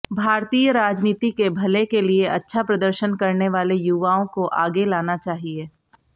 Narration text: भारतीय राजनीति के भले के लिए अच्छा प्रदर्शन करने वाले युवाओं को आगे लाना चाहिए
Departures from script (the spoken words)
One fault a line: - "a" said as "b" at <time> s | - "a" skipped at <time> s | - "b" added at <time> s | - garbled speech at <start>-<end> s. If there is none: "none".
none